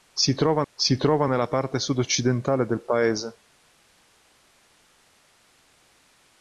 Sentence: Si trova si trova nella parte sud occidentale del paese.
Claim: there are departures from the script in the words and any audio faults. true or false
false